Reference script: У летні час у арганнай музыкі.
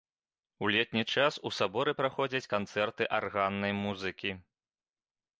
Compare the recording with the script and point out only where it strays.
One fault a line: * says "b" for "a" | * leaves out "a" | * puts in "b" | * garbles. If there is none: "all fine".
* puts in "саборы праходзяць канцэрты"